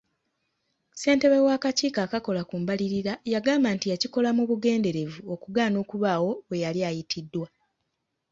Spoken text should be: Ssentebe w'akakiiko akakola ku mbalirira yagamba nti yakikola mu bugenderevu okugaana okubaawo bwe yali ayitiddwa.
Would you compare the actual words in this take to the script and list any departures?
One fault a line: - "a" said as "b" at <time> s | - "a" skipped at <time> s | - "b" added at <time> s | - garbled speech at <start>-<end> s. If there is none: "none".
none